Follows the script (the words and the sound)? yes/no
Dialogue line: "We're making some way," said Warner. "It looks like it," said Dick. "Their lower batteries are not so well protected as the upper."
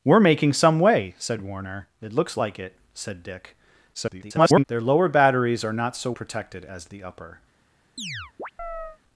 no